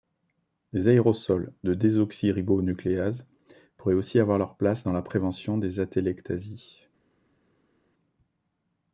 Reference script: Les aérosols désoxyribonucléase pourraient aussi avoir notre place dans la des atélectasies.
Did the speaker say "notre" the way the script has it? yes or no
no